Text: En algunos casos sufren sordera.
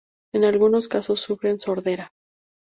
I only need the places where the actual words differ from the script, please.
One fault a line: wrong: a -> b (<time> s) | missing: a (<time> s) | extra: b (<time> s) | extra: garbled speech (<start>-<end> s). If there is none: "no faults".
no faults